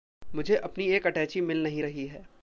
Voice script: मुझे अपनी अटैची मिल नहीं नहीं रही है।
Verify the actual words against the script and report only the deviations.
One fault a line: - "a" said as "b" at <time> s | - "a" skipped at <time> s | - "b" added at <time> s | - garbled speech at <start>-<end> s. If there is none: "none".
- "एक" added at 0.9 s
- "नहीं" skipped at 1.8 s